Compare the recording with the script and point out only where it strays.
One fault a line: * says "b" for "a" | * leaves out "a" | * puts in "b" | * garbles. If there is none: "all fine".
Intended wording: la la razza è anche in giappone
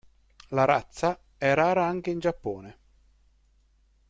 * leaves out "la"
* puts in "rara"